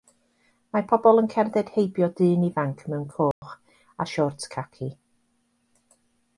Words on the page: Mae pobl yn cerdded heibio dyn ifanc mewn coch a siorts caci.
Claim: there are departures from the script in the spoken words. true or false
false